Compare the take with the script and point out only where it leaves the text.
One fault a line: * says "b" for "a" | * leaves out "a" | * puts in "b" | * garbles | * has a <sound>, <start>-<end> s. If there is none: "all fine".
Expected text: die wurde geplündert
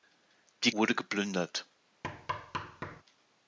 * has a thud, 2.0-3.0 s